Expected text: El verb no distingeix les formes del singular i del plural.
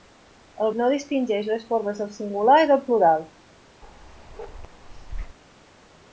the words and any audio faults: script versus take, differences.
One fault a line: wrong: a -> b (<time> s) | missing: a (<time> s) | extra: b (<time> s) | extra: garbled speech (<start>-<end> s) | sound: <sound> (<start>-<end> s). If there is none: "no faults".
missing: verb (0.7 s)
sound: bark (3.8-5.4 s)